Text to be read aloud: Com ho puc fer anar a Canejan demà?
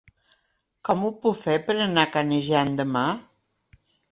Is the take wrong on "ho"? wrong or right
right